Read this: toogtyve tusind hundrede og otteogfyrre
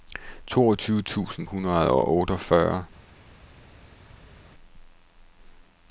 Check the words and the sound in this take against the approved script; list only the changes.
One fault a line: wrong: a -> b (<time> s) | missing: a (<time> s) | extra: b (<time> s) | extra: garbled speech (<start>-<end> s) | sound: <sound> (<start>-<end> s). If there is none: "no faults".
no faults